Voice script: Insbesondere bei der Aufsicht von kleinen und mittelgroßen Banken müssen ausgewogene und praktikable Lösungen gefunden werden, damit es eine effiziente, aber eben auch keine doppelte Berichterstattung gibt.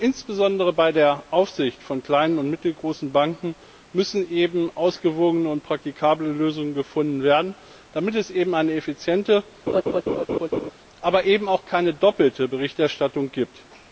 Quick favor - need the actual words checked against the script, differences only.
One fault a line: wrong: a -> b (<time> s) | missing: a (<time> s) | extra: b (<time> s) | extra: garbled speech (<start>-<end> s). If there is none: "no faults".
no faults